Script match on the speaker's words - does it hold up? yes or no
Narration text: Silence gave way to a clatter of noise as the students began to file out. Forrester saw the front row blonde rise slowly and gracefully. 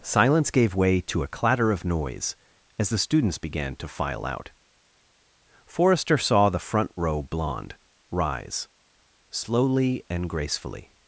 yes